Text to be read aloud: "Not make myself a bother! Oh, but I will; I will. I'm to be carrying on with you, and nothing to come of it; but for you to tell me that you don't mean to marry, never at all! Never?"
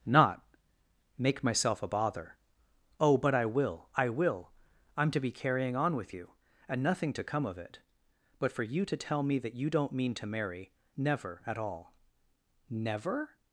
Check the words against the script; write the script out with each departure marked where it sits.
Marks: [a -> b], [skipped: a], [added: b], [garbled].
"Not make myself a bother! Oh, but I will; I will. I'm to be carrying on with you, and nothing to come of it; but for you to tell me that you don't mean to marry, never at all! Never?"